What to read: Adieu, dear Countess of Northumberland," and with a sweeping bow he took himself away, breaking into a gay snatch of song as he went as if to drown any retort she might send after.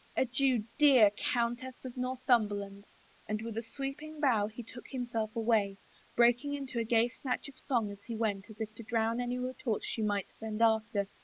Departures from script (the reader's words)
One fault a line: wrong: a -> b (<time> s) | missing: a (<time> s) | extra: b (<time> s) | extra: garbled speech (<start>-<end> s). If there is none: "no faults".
no faults